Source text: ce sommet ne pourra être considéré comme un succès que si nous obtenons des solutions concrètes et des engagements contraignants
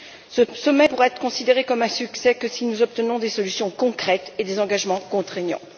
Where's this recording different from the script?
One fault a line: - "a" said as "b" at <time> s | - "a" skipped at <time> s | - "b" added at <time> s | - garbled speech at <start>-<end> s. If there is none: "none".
- "ne" skipped at 0.9 s